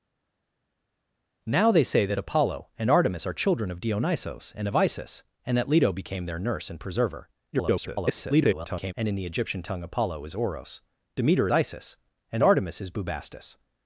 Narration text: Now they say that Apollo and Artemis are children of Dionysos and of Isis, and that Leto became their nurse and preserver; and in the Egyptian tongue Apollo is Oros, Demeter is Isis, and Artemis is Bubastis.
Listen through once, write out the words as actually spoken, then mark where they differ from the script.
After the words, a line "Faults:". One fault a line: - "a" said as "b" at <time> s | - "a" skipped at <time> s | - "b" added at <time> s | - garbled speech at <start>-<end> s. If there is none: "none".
Now they say that Apollo and Artemis are children of Dionysos and of Isis, and that Leto became their nurse and preserver; [garbled] and in the Egyptian tongue Apollo is Oros, Demeter Isis, and Artemis is Bubastis.
Faults:
- garbled speech at 7.5-8.9 s
- "is" skipped at 11.5 s